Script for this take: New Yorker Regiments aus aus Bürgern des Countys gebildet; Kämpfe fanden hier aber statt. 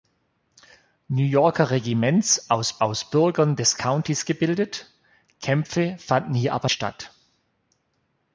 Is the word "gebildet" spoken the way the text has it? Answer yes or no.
yes